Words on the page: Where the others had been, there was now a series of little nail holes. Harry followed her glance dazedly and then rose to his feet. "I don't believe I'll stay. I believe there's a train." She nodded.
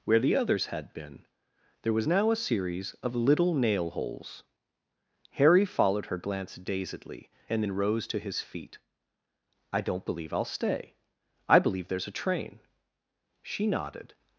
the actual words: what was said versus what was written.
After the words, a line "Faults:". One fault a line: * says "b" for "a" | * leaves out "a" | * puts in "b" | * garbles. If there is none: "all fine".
Where the others had been, there was now a series of little nail holes. Harry followed her glance dazedly and then rose to his feet. "I don't believe I'll stay. I believe there's a train." She nodded.
Faults:
all fine